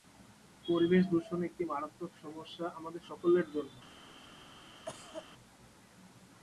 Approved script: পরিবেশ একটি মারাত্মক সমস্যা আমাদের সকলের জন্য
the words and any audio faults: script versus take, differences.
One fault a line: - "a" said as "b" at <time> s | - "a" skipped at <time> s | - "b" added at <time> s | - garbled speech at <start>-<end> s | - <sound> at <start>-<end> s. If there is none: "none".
- "দূষণ" added at 1.1 s
- cough at 4.9-5.3 s